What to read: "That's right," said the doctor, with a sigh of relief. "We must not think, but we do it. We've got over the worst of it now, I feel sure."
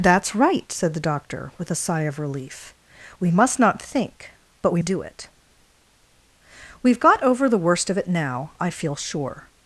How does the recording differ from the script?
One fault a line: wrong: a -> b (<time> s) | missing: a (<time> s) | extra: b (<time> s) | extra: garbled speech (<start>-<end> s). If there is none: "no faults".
no faults